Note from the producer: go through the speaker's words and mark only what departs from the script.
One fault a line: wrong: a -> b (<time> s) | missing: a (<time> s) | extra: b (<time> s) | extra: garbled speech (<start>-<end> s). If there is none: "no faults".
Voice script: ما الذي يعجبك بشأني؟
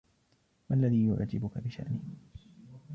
no faults